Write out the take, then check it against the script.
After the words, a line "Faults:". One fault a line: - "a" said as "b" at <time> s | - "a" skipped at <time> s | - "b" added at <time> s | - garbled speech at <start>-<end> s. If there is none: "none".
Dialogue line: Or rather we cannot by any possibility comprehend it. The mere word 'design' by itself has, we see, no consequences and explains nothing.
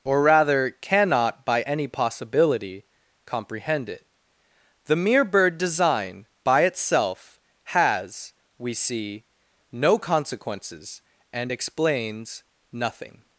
Or rather cannot by any possibility comprehend it. The mere bird 'design' by itself has, we see, no consequences and explains nothing.
Faults:
- "we" skipped at 0.7 s
- "word" said as "bird" at 5.2 s